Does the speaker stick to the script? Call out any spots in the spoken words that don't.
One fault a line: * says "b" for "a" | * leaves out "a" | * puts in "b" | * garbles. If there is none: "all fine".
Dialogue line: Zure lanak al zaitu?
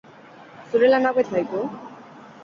all fine